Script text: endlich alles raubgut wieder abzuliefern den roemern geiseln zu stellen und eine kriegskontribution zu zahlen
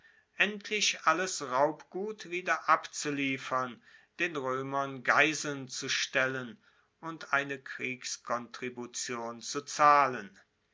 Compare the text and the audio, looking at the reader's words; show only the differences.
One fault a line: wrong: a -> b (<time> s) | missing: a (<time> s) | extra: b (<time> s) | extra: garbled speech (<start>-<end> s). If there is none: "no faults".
no faults